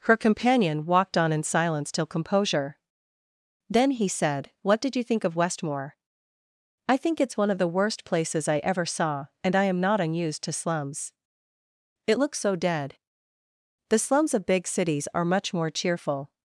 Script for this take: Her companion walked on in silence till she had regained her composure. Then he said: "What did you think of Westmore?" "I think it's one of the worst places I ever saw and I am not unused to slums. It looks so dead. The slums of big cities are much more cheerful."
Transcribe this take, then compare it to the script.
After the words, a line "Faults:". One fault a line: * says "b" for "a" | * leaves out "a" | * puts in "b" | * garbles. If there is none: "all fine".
Her companion walked on in silence till composure. Then he said: "What did you think of Westmore?" "I think it's one of the worst places I ever saw and I am not unused to slums. It looks so dead. The slums of big cities are much more cheerful."
Faults:
* leaves out "she had regained her"